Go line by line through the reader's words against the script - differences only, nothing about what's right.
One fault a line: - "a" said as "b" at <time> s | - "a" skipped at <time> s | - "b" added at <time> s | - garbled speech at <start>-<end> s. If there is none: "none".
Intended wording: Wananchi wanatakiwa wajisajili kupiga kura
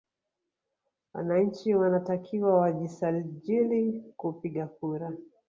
none